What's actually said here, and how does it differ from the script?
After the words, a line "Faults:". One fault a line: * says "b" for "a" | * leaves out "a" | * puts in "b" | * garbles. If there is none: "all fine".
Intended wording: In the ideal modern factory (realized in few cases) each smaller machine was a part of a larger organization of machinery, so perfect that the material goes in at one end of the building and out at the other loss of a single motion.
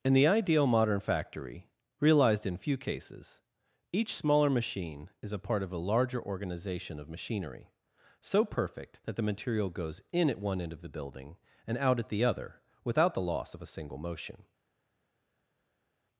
In the ideal modern factory (realized in few cases) each smaller machine is a part of a larger organization of machinery, so perfect that the material goes in at one end of the building and out at the other without the loss of a single motion.
Faults:
* says "is" for "was"
* puts in "without the"